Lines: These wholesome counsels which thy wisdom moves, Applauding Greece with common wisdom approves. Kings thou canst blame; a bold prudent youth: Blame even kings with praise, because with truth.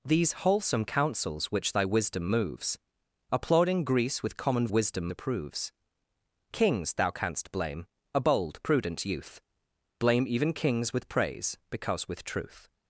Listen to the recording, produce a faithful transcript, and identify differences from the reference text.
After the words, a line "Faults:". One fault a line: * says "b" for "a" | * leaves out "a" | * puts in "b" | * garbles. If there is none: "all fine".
These wholesome counsels which thy wisdom moves, Applauding Greece with common wisdom approves. Kings thou canst blame; a bold prudent youth: Blame even kings with praise, because with truth.
Faults:
all fine